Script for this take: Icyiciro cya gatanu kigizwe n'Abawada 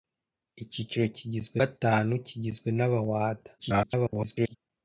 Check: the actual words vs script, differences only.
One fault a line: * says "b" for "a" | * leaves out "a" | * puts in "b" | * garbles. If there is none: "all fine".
* says "kigizwe" for "cya"
* garbles